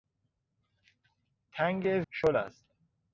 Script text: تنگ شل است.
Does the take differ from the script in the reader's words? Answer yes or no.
no